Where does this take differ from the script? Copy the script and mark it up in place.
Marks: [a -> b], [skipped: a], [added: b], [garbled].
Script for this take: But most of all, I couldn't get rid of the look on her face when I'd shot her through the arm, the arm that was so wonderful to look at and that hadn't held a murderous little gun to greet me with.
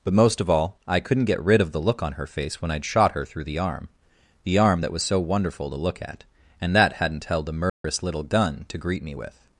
But most of all, I couldn't get rid of the look on her face when I'd shot her through the arm, the arm that was so wonderful to look at and that hadn't held a murderous little gun to greet me with.